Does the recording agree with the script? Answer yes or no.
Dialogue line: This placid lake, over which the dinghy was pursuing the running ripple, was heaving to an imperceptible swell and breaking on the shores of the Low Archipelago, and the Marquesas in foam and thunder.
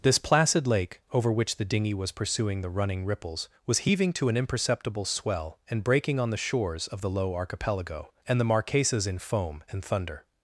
no